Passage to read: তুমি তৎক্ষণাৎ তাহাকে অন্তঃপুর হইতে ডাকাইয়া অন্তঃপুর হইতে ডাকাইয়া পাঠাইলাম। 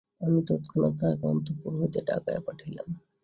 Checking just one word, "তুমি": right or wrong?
wrong